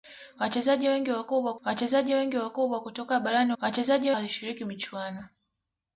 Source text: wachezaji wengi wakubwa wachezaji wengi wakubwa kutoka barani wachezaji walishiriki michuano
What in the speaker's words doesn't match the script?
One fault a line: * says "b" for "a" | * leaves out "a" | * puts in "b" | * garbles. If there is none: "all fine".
all fine